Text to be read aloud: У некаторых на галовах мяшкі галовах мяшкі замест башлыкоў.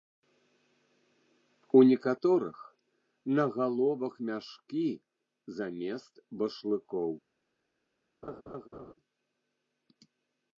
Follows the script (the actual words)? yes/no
no